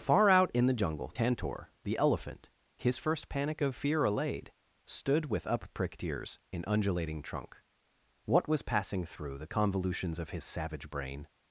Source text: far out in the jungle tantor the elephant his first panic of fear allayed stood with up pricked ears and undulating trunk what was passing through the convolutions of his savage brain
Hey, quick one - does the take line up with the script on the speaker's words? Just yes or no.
no